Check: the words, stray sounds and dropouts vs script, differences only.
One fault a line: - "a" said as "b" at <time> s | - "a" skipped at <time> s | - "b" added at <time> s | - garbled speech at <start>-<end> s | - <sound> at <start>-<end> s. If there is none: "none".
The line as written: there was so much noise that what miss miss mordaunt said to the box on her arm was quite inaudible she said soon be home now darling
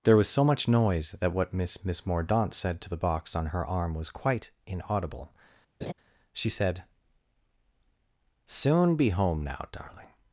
- laugh at 5.8-5.9 s